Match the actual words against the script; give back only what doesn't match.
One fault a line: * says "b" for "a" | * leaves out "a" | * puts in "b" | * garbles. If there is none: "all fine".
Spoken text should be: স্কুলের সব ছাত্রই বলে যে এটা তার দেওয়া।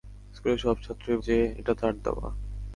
* leaves out "বলে"